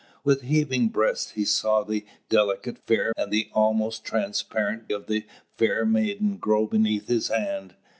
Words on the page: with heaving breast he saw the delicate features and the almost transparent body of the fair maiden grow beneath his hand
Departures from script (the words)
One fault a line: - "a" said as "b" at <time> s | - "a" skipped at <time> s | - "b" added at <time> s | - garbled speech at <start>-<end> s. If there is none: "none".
- "features" said as "fair" at 2.9 s
- "body" skipped at 4.9 s